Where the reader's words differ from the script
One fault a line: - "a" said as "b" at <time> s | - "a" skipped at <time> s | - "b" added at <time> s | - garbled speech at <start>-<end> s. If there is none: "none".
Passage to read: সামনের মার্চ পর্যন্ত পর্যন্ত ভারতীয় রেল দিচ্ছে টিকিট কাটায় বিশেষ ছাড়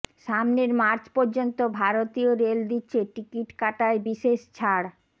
- "পর্যন্ত" skipped at 1.6 s